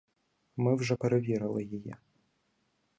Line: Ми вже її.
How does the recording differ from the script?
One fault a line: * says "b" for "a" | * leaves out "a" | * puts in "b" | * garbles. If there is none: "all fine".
* puts in "перевірили"